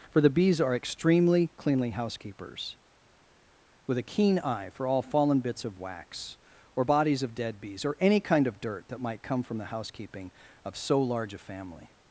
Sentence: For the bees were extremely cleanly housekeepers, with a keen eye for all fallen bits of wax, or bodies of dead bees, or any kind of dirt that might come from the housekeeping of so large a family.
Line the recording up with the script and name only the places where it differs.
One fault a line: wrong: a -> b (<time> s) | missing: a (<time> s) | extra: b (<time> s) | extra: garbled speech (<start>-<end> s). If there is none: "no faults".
wrong: were -> are (0.6 s)